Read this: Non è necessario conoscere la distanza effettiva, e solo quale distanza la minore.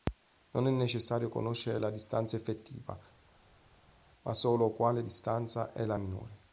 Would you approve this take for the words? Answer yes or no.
no